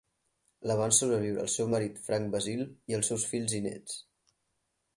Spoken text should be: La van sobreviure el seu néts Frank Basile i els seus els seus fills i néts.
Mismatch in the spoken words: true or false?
true